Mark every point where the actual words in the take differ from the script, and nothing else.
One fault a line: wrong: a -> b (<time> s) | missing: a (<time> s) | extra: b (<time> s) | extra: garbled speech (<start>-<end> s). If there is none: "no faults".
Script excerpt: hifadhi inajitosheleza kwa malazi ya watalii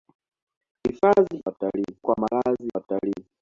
wrong: inajitosheleza -> watalii (1.5 s)
missing: ya (2.7 s)